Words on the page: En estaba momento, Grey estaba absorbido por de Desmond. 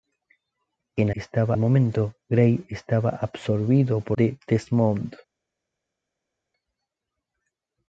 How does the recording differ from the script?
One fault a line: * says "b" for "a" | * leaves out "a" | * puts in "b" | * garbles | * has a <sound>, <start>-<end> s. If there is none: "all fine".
all fine